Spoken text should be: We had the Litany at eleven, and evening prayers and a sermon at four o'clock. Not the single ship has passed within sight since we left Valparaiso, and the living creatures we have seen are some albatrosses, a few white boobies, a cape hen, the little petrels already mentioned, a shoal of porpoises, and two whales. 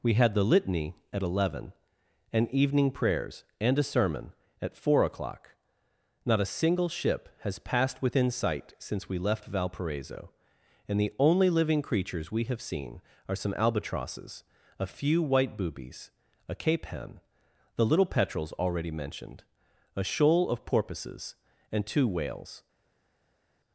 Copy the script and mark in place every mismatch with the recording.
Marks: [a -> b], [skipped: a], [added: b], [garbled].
We had the Litany at eleven, and evening prayers and a sermon at four o'clock. Not [the -> a] single ship has passed within sight since we left Valparaiso, and the [added: only] living creatures we have seen are some albatrosses, a few white boobies, a cape hen, the little petrels already mentioned, a shoal of porpoises, and two whales.